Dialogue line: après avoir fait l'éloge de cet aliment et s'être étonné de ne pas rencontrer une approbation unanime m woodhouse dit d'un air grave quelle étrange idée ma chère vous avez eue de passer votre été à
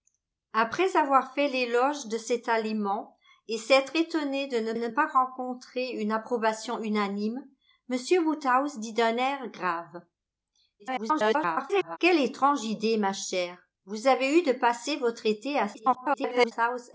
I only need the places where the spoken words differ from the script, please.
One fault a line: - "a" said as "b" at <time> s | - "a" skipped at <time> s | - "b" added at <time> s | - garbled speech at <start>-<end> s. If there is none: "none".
- "ne" added at 4.7 s
- garbled speech at 10.8-12.0 s
- garbled speech at 15.7-16.5 s